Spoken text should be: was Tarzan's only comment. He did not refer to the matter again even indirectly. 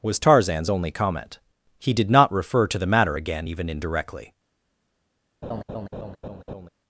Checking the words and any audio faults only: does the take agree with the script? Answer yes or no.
no